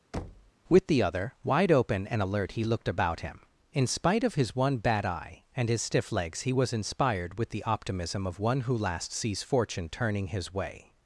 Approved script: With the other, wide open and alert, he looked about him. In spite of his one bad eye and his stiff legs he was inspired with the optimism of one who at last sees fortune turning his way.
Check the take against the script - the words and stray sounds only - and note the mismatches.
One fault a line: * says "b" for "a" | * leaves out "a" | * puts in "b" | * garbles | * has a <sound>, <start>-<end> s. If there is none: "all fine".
* has a thud, 0.1-0.5 s
* leaves out "at"